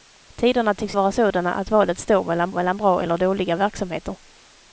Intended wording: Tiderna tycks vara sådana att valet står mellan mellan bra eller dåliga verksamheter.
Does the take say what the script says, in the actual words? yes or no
yes